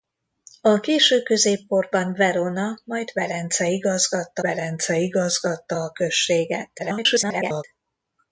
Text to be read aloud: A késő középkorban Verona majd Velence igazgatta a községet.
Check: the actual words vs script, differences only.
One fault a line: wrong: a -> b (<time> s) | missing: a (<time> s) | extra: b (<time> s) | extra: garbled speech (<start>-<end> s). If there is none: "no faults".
extra: Velence igazgatta (4.4 s)
extra: garbled speech (6.8-7.6 s)